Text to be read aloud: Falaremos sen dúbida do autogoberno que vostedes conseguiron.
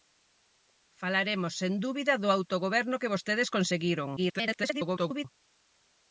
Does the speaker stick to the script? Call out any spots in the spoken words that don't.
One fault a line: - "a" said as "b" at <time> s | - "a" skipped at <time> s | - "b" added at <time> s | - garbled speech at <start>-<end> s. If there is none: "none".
- garbled speech at 4.2-5.3 s